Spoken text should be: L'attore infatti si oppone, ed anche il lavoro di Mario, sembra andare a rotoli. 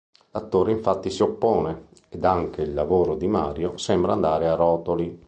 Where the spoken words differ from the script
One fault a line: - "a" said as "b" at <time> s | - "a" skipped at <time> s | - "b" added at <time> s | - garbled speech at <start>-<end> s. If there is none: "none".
none